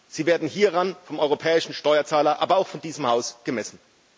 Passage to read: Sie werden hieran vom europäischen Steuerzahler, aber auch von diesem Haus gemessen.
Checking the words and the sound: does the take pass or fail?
pass